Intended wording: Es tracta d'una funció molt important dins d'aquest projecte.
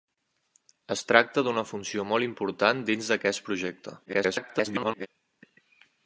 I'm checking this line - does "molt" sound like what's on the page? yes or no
yes